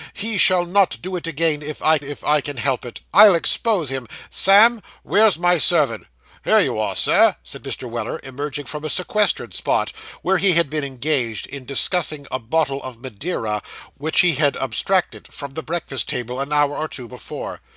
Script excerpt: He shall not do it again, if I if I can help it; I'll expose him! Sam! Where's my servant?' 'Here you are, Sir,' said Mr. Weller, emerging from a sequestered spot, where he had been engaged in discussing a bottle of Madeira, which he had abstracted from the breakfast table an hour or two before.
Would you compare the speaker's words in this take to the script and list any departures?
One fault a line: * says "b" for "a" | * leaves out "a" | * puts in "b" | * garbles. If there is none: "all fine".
all fine